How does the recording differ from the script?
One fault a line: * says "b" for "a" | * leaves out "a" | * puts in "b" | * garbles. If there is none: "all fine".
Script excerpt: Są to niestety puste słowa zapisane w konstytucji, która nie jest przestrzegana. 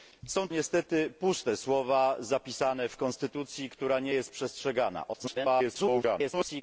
* leaves out "to"
* garbles